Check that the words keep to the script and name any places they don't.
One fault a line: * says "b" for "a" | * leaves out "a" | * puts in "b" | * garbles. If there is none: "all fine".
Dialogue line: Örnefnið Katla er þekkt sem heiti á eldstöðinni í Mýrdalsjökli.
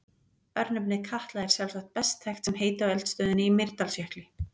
* puts in "sjálfsagt best"